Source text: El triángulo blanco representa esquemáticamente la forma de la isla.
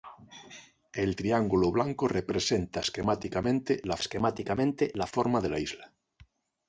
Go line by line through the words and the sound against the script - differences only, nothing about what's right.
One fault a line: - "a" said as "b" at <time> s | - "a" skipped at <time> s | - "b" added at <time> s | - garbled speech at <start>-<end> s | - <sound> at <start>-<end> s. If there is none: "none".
- "esquemáticamente la" added at 4.0 s